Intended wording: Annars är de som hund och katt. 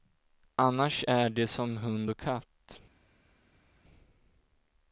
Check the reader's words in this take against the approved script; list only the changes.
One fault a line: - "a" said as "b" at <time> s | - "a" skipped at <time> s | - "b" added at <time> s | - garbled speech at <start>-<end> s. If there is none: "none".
none